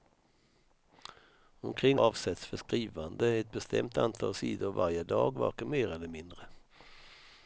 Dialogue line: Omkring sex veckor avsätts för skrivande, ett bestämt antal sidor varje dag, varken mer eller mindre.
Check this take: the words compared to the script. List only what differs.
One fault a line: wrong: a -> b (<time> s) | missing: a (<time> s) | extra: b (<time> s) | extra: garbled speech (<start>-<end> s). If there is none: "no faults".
missing: sex veckor (2.0 s)